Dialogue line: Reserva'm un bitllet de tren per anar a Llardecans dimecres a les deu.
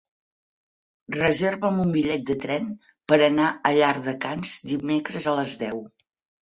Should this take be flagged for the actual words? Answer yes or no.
no